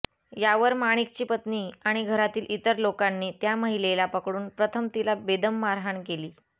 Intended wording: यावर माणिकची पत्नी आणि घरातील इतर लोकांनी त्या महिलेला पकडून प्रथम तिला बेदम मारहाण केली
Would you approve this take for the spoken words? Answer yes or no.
yes